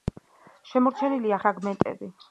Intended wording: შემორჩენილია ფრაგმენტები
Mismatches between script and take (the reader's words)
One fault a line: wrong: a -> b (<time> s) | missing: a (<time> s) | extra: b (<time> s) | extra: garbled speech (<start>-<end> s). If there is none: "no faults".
no faults